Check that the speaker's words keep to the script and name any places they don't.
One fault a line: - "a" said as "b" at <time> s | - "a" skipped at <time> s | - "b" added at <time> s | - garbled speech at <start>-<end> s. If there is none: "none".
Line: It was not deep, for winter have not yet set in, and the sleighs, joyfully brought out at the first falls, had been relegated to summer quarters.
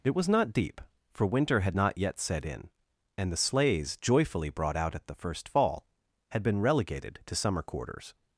- "have" said as "had" at 1.6 s
- "falls" said as "fall" at 5.5 s